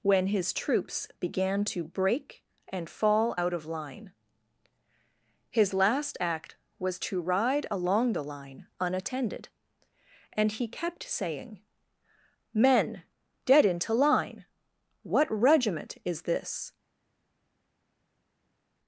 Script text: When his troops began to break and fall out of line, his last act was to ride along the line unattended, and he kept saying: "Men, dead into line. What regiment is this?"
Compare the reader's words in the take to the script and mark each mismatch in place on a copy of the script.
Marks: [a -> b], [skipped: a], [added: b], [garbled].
When his troops began to break and fall out of line, his last act was to ride along the line unattended, and he kept saying: "Men, dead into line. What regiment is this?"